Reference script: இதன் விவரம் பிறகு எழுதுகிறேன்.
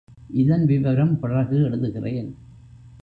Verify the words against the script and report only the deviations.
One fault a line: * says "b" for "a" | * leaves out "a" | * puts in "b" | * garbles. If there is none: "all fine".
all fine